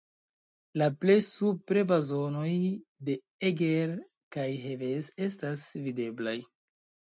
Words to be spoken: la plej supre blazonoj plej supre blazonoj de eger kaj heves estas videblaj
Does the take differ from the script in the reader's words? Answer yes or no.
yes